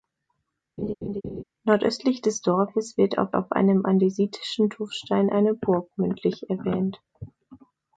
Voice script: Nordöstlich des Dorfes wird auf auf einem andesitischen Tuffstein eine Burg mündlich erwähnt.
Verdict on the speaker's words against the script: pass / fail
pass